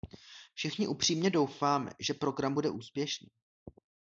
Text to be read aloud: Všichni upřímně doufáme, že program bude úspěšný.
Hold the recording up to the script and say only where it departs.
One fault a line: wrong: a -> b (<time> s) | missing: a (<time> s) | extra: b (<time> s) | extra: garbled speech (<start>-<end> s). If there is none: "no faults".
no faults